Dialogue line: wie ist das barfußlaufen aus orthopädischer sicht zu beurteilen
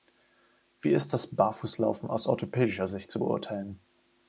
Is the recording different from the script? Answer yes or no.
no